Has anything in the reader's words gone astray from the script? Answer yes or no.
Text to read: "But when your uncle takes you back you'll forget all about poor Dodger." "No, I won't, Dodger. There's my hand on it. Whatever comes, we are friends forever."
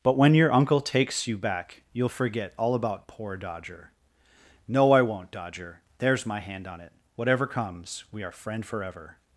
yes